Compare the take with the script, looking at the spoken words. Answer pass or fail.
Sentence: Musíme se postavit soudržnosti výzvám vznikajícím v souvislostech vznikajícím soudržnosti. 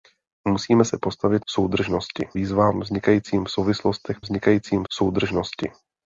pass